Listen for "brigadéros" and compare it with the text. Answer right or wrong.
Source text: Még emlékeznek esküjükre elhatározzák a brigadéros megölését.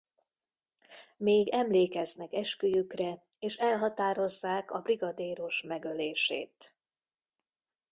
right